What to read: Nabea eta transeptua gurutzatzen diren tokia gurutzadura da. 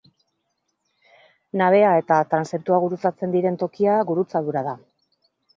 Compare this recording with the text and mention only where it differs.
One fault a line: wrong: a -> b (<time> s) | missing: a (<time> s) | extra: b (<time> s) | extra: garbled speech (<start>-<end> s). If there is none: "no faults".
no faults